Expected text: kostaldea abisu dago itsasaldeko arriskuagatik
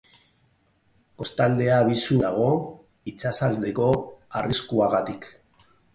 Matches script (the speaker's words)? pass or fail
pass